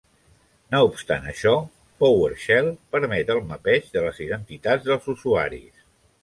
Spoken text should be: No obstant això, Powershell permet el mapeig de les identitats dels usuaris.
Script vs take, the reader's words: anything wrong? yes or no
no